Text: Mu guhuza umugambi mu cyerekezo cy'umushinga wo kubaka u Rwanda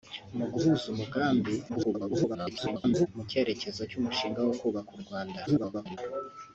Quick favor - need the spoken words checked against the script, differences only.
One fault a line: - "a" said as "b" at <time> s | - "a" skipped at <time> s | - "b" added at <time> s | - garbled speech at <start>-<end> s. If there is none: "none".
- garbled speech at 1.7-3.1 s
- garbled speech at 5.5-6.0 s